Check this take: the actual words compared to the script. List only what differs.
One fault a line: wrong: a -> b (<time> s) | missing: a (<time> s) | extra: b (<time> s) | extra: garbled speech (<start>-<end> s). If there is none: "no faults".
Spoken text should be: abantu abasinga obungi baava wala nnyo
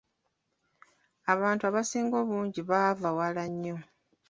no faults